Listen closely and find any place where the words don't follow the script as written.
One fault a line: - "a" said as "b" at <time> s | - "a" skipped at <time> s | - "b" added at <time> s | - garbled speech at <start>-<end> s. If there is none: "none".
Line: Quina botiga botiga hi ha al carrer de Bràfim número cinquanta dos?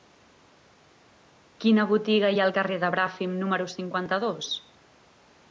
- "botiga" skipped at 2.3 s